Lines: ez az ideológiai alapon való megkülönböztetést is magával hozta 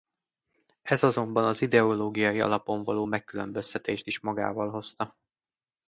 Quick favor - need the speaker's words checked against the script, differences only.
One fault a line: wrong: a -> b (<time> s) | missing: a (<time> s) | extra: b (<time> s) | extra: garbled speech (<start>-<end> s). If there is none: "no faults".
extra: azonban (1.0 s)